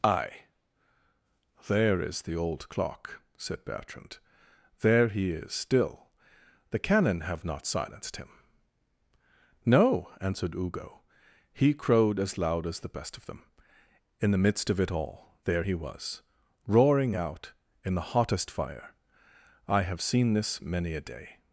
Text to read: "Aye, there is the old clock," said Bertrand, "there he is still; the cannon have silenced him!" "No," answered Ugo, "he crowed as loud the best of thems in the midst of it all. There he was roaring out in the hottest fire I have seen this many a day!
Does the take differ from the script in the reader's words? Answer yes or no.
yes